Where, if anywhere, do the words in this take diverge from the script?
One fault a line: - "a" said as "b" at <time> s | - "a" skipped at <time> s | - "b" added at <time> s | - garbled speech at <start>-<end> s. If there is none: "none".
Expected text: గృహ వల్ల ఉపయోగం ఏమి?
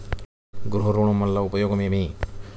- "ఋణం" added at 0.9 s